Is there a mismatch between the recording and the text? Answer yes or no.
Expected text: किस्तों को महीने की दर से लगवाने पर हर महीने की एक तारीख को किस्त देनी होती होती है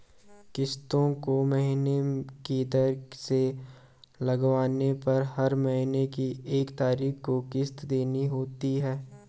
yes